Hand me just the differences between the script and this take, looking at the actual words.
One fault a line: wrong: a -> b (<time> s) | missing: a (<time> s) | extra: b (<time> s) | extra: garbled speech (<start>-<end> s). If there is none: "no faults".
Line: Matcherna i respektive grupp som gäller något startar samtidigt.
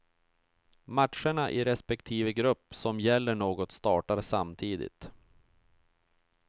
no faults